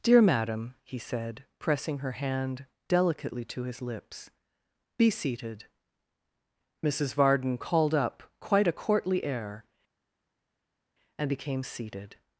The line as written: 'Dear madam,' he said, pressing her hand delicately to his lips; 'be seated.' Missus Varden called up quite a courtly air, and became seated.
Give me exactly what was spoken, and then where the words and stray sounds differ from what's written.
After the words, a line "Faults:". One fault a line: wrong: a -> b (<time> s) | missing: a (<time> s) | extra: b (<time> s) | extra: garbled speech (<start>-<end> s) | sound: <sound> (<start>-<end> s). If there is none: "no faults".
'Dear madam,' he said, pressing her hand delicately to his lips; 'be seated.' Missus Varden called up quite a courtly air, and became seated.
Faults:
no faults